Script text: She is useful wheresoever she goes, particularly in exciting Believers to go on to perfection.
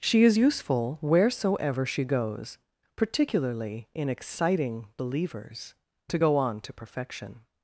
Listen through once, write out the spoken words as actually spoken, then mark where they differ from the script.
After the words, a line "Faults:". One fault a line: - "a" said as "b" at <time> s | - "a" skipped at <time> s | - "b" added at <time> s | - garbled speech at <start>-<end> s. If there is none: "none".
She is useful wheresoever she goes, particularly in exciting Believers to go on to perfection.
Faults:
none